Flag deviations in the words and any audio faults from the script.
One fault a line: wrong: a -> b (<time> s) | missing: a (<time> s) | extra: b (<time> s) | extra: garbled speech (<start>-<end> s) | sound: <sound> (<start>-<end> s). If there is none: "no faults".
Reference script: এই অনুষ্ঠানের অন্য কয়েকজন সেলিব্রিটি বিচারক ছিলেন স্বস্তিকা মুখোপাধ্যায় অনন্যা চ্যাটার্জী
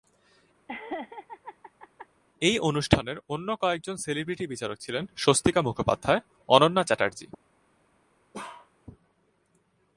sound: laugh (0.7-2.1 s)
sound: bark (8.3-8.7 s)